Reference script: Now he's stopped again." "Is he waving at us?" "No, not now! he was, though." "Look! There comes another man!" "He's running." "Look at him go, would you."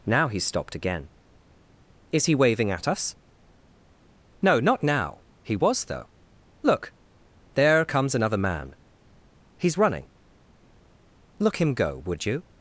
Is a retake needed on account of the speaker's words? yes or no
yes